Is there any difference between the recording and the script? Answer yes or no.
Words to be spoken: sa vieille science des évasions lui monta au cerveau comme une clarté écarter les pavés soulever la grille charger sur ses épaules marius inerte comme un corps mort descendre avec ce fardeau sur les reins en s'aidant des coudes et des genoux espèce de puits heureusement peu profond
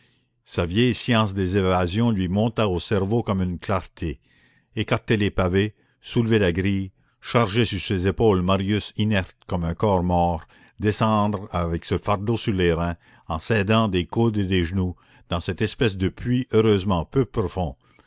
yes